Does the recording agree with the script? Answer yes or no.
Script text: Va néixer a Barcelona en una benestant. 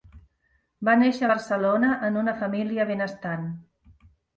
no